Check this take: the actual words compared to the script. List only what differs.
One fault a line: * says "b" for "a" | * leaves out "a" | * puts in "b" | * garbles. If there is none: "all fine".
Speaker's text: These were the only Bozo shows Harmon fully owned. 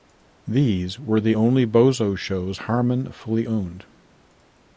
all fine